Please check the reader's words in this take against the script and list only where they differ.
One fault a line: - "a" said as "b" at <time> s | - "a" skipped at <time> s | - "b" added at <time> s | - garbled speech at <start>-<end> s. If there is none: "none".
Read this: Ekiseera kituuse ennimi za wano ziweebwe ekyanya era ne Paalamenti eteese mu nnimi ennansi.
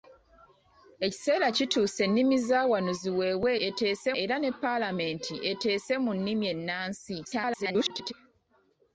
- "ekyanya" said as "eteese" at 3.7 s
- garbled speech at 7.2-8.1 s